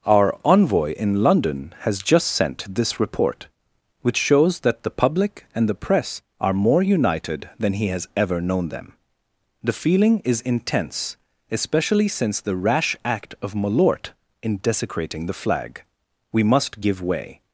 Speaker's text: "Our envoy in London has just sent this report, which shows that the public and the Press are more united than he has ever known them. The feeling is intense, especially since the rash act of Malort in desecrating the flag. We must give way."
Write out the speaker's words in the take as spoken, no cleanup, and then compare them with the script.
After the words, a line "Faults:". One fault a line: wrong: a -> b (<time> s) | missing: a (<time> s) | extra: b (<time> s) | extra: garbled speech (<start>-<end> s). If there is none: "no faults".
"Our envoy in London has just sent this report, which shows that the public and the Press are more united than he has ever known them. The feeling is intense, especially since the rash act of Malort in desecrating the flag. We must give way."
Faults:
no faults